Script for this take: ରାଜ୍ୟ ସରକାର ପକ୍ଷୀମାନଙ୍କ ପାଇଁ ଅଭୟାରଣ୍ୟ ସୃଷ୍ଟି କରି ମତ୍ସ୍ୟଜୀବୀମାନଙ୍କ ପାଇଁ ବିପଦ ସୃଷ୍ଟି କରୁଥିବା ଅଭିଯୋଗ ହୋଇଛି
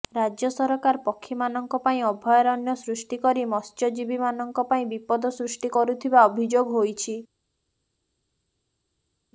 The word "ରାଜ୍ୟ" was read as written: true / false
true